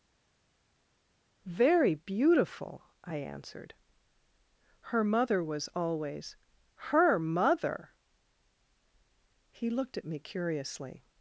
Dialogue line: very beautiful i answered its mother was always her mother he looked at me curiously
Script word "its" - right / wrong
wrong